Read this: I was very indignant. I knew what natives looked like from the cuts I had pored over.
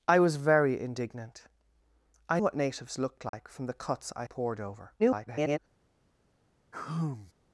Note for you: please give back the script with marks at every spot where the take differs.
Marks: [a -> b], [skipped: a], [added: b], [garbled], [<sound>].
I was very indignant. I [skipped: knew] what natives looked like [dropout] from the cuts I [skipped: had] pored over. [garbled] [sigh]